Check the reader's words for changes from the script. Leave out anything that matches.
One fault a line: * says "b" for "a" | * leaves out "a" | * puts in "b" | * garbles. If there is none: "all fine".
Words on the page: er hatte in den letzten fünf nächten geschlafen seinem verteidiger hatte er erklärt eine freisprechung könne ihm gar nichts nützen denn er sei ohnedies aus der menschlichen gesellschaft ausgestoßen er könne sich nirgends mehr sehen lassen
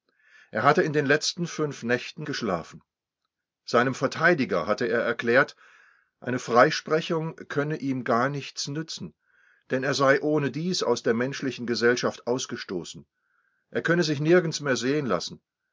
all fine